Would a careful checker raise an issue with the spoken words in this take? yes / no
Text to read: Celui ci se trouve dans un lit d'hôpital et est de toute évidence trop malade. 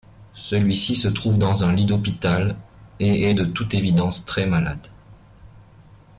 yes